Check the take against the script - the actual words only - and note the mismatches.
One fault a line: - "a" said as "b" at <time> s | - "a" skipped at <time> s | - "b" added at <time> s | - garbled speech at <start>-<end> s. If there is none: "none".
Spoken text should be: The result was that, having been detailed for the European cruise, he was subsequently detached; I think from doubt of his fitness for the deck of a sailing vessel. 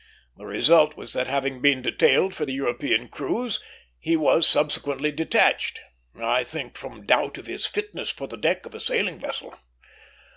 none